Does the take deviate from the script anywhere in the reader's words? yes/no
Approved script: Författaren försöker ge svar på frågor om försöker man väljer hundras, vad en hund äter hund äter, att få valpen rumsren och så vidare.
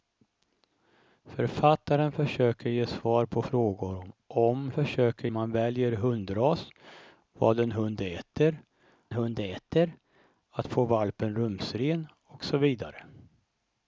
no